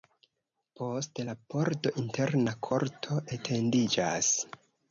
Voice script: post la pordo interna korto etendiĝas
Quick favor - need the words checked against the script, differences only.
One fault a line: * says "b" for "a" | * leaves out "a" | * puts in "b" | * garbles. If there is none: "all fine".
all fine